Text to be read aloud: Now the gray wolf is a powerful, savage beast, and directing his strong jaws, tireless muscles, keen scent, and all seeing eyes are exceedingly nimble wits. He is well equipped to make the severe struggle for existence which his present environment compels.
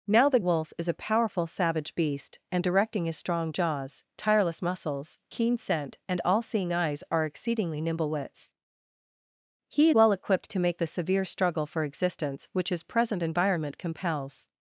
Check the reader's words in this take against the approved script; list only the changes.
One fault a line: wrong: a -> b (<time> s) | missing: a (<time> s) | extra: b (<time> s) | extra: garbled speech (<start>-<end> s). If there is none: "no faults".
missing: gray (0.4 s)
missing: is (9.9 s)